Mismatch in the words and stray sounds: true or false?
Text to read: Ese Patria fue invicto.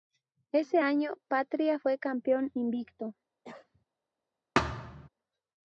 true